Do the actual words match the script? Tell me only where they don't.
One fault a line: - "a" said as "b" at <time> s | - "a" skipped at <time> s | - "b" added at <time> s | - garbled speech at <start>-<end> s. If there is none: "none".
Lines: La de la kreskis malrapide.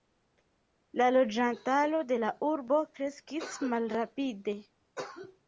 - "loĝantaro" added at 1.2 s
- "urbo" added at 2.5 s